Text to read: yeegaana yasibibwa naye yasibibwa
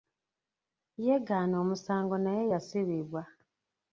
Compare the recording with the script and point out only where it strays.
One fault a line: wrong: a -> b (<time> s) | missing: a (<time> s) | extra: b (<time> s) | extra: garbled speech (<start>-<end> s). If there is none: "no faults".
wrong: yasibibwa -> omusango (1.6 s)